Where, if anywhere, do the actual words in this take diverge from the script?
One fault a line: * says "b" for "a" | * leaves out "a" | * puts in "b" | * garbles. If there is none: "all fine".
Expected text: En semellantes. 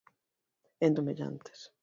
all fine